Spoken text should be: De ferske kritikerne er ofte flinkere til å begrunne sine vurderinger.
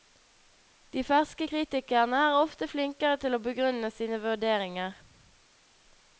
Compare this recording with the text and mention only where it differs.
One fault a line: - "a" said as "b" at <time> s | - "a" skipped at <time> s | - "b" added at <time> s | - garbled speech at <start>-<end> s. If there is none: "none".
none